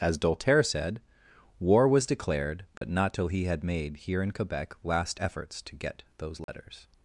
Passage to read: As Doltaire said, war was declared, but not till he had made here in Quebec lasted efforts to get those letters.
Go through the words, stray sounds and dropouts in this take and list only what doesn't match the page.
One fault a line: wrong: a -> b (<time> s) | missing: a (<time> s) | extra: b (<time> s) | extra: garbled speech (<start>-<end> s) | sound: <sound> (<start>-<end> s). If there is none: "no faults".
sound: dropout (2.8-2.8 s)
wrong: lasted -> last (4.8 s)
sound: dropout (6.4-6.5 s)